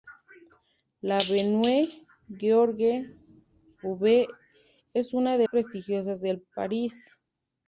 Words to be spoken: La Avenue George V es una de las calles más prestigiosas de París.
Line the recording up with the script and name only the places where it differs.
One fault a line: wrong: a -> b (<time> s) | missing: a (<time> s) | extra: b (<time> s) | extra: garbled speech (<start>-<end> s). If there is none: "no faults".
missing: las calles más (5.5 s)